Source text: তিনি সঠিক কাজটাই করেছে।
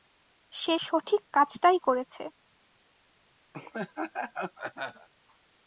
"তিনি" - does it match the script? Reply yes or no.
no